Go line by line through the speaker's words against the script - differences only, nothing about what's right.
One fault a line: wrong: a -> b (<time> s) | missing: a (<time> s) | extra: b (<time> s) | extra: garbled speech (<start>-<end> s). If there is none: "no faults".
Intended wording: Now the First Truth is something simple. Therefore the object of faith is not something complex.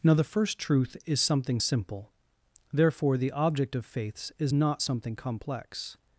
wrong: faith -> faiths (3.9 s)